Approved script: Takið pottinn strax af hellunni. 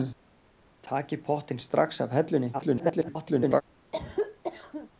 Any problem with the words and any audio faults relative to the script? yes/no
yes